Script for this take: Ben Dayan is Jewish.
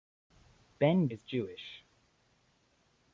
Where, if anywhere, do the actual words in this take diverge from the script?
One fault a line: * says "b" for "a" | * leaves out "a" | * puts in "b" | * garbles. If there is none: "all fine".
* leaves out "Dayan"